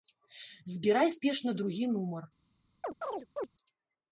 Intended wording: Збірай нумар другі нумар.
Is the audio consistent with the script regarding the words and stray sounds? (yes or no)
no